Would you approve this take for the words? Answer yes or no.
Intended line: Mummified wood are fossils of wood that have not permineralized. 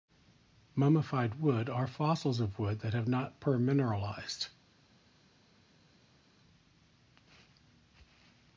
yes